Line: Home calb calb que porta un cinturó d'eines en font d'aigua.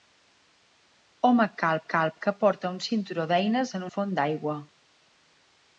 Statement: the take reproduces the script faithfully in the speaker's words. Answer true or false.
true